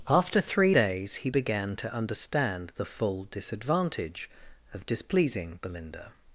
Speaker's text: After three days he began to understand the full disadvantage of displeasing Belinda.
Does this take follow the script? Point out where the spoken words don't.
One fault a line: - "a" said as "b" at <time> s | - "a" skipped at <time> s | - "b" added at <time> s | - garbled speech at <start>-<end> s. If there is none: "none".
none